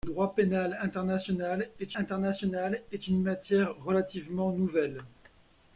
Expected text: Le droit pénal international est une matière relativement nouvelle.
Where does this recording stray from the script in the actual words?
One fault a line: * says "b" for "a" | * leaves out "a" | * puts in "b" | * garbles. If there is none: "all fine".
* puts in "international est"